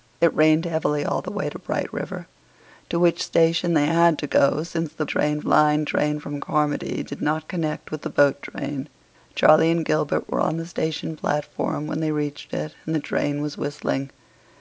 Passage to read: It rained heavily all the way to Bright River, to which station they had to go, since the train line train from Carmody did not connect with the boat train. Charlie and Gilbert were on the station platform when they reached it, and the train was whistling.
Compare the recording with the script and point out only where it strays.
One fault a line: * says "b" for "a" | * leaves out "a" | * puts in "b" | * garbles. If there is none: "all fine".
all fine